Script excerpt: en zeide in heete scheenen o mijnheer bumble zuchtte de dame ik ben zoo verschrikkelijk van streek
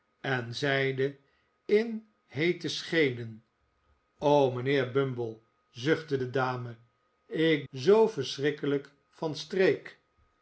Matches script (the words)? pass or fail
fail